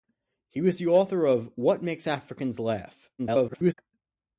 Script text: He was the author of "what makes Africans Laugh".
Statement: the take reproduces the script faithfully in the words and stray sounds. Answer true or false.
false